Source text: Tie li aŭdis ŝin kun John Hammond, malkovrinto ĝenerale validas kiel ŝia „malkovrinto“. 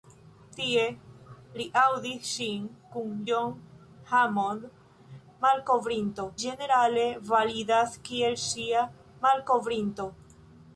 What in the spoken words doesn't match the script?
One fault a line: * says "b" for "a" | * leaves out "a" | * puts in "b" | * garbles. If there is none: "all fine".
all fine